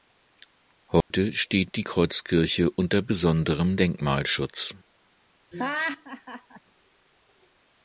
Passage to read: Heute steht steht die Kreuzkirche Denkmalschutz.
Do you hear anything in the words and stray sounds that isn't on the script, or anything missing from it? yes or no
yes